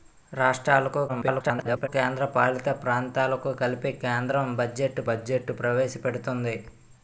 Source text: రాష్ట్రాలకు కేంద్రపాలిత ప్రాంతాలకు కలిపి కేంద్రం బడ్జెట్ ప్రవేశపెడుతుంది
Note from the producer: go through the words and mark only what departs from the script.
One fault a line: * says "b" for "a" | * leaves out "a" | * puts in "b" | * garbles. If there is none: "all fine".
* garbles
* puts in "బడ్జెట్"